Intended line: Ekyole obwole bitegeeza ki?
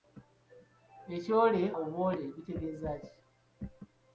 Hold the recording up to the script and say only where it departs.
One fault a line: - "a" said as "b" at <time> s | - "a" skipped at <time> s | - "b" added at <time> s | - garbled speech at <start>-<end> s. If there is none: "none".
none